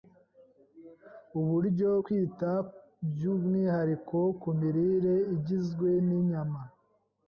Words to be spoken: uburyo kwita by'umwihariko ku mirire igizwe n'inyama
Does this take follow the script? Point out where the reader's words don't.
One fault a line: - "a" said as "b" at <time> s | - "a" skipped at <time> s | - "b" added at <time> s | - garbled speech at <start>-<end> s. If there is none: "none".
none